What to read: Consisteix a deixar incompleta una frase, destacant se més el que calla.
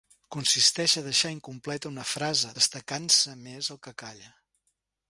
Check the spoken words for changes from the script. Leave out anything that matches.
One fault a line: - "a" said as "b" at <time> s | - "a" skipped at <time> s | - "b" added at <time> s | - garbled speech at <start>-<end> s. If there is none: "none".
none